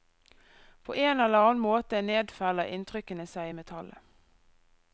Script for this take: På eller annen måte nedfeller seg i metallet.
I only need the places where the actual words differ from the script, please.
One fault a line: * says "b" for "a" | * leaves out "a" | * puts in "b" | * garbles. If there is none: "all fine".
* puts in "en"
* puts in "inntrykkene"